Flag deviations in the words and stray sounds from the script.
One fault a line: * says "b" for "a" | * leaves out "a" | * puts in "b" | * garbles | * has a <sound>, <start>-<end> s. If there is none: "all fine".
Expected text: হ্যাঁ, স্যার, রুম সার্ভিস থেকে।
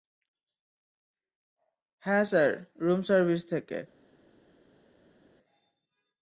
all fine